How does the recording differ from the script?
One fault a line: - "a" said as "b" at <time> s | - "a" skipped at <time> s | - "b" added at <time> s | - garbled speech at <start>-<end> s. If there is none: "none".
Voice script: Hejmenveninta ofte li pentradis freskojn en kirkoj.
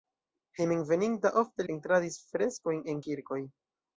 - "li" skipped at 1.7 s